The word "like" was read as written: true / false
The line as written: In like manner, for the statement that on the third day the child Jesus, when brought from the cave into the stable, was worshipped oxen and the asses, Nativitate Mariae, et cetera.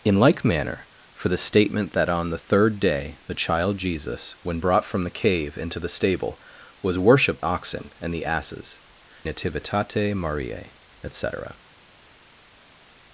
true